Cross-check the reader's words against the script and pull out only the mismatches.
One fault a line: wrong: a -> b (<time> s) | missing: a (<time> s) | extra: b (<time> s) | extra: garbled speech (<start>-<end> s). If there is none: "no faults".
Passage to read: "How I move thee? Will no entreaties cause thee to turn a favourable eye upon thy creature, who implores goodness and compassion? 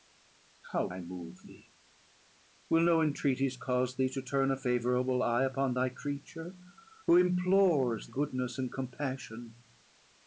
no faults